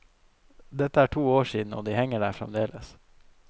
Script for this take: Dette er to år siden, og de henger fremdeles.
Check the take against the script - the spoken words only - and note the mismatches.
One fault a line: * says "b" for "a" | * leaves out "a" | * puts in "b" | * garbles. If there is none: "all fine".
* puts in "der"